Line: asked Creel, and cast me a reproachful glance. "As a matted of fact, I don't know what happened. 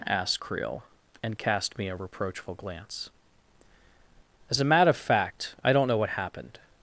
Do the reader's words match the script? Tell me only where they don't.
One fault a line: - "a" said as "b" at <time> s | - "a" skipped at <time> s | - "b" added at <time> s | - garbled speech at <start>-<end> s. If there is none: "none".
- "matted" said as "matter" at 4.6 s